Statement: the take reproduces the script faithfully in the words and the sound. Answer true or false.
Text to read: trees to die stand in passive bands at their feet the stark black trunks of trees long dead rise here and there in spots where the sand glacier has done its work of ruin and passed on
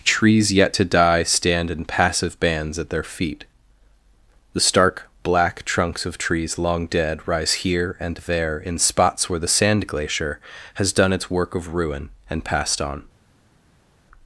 false